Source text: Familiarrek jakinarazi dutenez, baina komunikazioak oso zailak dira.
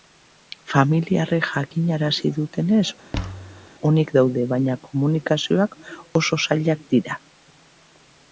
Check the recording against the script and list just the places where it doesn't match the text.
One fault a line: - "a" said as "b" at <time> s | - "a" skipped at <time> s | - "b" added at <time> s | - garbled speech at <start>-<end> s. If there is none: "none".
- "onik daude" added at 3.9 s